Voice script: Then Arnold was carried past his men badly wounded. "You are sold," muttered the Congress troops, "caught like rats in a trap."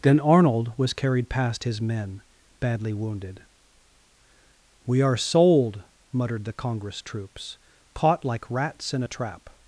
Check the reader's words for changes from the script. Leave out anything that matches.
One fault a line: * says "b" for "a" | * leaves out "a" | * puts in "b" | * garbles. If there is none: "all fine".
* says "We" for "You"